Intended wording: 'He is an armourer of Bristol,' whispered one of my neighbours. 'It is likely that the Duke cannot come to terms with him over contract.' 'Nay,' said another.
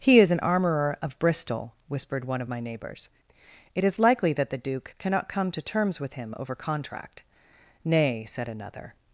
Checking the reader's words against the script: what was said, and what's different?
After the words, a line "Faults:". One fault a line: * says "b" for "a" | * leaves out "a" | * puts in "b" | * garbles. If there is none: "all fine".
'He is an armourer of Bristol,' whispered one of my neighbours. 'It is likely that the Duke cannot come to terms with him over contract.' 'Nay,' said another.
Faults:
all fine